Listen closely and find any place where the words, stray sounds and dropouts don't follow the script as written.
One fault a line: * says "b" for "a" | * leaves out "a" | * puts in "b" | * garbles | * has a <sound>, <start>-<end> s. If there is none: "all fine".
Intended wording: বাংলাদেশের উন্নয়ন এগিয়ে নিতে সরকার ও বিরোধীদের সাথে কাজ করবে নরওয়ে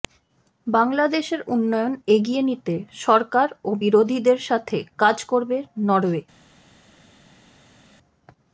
all fine